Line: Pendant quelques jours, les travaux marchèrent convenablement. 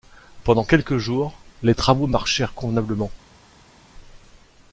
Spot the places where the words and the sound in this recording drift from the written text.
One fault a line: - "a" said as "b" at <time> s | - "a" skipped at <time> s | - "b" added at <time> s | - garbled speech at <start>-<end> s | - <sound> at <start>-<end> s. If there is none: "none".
none